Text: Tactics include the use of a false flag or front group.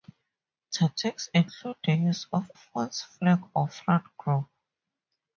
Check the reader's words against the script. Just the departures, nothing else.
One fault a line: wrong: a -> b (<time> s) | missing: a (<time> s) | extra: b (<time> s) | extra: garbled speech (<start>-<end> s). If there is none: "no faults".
missing: a (2.5 s)